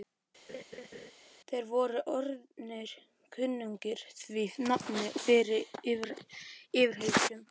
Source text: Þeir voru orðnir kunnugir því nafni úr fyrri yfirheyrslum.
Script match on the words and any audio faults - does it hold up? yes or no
no